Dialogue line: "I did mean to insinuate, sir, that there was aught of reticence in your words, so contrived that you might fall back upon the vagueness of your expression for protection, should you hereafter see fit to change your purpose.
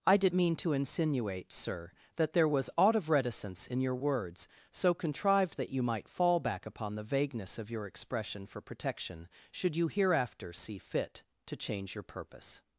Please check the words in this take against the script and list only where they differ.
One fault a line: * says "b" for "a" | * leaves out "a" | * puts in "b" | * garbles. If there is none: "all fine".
all fine